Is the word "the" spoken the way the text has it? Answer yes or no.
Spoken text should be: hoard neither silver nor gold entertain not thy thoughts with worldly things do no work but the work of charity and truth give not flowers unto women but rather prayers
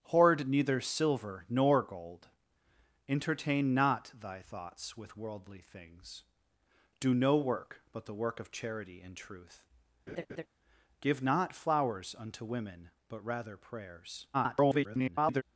yes